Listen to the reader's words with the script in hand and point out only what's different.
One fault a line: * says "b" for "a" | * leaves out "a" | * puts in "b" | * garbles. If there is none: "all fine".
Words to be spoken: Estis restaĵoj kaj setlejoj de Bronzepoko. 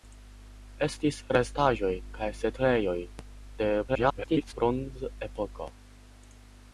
* garbles